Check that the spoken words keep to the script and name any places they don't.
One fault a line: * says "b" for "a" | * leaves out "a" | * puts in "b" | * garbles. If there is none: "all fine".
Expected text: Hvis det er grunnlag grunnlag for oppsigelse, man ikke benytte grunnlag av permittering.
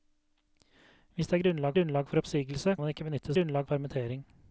all fine